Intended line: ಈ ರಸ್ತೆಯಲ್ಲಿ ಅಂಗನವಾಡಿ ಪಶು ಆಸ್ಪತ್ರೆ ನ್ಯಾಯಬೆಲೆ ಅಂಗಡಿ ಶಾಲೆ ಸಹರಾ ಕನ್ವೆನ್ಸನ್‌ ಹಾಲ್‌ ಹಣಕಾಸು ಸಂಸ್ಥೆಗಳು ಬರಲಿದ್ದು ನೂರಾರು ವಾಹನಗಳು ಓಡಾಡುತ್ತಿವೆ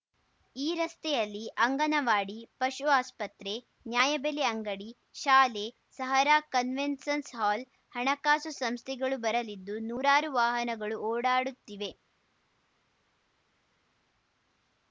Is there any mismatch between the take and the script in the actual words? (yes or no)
no